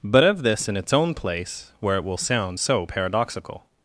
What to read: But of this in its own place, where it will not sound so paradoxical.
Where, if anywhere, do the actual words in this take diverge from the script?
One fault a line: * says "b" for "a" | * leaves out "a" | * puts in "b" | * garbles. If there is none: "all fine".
* leaves out "not"